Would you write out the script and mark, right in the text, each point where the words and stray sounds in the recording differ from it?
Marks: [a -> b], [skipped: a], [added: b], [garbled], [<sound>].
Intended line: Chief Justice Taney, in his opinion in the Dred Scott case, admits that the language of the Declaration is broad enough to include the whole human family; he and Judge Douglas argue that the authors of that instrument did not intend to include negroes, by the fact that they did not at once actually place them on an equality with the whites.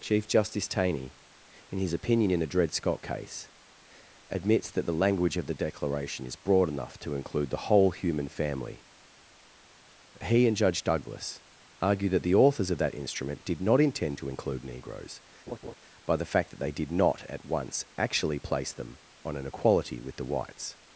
Chief Justice Taney, in his opinion in the Dred Scott case, admits that the language of the Declaration is broad enough to include the whole human family; he and Judge Douglas argue that the authors of that instrument did not intend to include negroes, [laugh] by the fact that they did not at once actually place them on an equality with the whites.